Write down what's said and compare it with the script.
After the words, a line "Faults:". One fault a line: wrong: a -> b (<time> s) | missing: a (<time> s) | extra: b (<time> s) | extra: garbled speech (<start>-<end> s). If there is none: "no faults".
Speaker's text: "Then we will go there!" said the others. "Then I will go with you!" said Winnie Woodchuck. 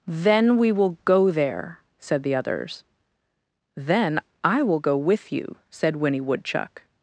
"Then we will go there!" said the others. "Then I will go with you!" said Winnie Woodchuck.
Faults:
no faults